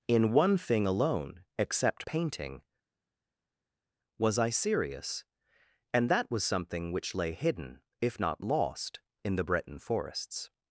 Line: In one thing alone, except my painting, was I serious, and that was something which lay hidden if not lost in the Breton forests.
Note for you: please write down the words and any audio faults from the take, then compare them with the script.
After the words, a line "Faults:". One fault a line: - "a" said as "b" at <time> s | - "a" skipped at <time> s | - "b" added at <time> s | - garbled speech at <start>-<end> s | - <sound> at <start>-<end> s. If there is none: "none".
In one thing alone, except painting, was I serious, and that was something which lay hidden if not lost in the Breton forests.
Faults:
- "my" skipped at 2.1 s